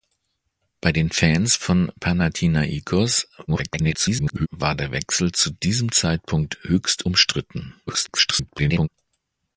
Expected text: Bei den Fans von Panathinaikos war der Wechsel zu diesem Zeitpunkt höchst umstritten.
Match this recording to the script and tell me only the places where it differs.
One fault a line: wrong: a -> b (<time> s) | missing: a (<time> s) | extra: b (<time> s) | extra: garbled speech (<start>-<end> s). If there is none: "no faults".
extra: garbled speech (3.5-4.5 s)
extra: garbled speech (7.9-8.9 s)